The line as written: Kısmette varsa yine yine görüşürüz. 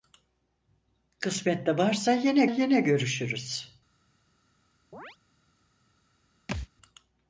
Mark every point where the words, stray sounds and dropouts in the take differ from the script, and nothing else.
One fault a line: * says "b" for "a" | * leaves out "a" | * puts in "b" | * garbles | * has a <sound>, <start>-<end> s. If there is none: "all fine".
* has a chirp, 4.9-5.2 s
* has a thud, 6.5-6.7 s